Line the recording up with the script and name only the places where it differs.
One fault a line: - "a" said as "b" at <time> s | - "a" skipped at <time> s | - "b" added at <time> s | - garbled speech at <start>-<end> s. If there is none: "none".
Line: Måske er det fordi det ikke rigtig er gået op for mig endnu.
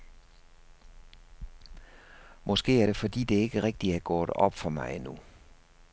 none